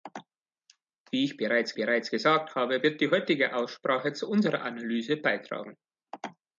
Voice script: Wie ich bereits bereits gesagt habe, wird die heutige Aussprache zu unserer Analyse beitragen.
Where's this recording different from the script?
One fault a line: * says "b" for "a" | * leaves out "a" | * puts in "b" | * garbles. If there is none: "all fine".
all fine